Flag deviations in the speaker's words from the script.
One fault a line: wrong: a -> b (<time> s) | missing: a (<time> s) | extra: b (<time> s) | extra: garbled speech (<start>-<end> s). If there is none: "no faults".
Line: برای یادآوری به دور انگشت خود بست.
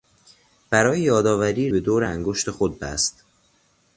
no faults